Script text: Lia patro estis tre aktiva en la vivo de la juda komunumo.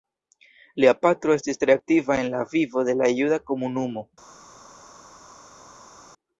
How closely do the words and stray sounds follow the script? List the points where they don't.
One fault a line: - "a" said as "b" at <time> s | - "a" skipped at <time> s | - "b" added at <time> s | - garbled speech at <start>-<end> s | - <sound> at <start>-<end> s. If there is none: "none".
none